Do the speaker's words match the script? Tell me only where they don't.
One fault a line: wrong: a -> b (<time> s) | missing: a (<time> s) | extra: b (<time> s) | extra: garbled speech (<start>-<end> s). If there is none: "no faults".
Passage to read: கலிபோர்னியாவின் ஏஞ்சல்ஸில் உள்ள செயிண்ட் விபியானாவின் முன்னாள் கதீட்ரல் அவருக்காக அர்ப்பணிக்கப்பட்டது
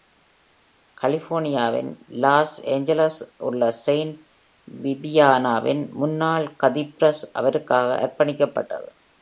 extra: லாஸ் (2.1 s)